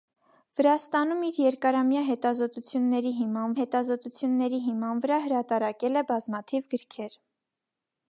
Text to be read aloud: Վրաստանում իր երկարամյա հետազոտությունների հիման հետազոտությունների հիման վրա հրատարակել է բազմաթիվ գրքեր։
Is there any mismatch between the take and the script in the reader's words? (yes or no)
no